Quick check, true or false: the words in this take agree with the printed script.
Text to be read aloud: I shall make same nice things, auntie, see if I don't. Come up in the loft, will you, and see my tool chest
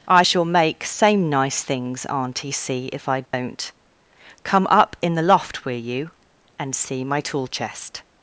true